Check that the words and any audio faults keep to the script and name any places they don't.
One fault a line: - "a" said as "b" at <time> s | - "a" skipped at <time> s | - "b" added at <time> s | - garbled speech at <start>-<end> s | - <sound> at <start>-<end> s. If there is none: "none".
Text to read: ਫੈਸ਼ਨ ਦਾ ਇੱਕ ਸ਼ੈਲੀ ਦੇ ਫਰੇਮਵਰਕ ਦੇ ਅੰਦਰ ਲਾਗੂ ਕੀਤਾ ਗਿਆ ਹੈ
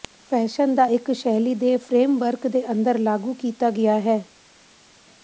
none